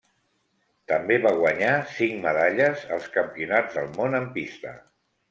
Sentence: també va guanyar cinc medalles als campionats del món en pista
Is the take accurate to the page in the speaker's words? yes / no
yes